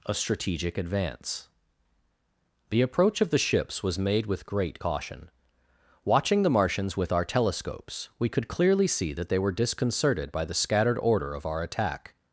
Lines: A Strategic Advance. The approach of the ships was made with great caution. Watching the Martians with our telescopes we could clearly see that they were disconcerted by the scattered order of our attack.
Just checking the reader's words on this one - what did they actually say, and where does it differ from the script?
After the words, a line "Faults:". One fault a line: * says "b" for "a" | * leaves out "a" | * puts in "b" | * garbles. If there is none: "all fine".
A Strategic Advance. The approach of the ships was made with great caution. Watching the Martians with our telescopes we could clearly see that they were disconcerted by the scattered order of our attack.
Faults:
all fine